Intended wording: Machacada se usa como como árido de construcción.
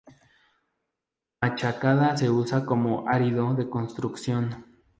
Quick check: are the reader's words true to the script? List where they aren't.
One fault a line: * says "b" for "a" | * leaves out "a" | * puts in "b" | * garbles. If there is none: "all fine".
* leaves out "como"